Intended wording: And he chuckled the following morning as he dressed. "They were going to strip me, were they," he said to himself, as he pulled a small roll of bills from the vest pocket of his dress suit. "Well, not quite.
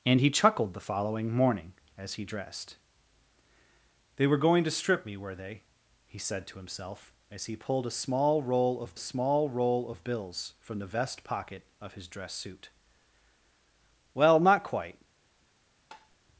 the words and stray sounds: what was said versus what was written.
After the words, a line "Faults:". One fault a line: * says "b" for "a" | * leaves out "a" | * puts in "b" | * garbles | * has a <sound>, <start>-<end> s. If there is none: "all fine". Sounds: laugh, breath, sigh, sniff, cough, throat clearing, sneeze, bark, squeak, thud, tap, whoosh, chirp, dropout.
And he chuckled the following morning as he dressed. "They were going to strip me, were they," he said to himself, as he pulled a small roll of small roll of bills from the vest pocket of his dress suit. "Well, not quite.
Faults:
* puts in "small roll of"
* has a tap, 15.9-16.2 s